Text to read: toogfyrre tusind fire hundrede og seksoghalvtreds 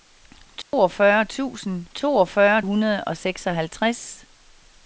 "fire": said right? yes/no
no